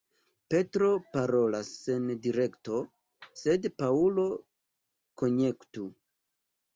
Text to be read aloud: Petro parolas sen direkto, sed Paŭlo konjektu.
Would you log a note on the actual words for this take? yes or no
no